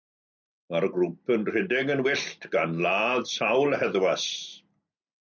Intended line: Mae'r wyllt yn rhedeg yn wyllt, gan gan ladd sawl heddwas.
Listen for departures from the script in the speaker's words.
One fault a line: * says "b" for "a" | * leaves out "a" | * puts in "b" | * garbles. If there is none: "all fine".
* says "grŵp" for "wyllt"
* leaves out "gan"